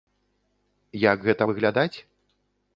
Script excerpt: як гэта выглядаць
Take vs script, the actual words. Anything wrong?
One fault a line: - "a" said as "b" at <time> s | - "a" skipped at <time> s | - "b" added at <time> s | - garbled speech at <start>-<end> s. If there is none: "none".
none